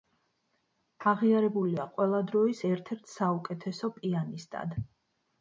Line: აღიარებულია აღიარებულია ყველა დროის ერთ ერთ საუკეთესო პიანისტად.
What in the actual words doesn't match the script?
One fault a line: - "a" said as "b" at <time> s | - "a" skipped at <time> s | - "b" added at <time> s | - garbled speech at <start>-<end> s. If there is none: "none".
- "აღიარებულია" skipped at 1.9 s